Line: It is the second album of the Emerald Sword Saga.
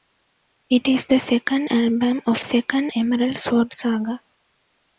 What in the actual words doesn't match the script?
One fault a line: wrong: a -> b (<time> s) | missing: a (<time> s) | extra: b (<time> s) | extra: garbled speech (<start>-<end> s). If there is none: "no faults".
wrong: the -> second (2.4 s)